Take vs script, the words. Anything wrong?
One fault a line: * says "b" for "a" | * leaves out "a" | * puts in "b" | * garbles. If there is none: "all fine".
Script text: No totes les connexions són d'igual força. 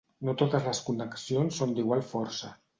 all fine